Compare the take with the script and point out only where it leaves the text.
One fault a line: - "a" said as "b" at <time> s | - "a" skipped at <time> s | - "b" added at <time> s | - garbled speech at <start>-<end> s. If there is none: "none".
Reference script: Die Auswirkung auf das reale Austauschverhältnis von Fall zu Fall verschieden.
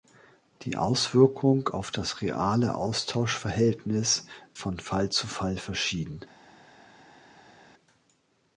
none